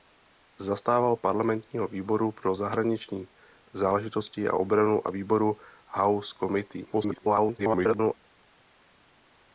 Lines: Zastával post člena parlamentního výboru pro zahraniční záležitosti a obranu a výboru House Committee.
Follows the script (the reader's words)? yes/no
no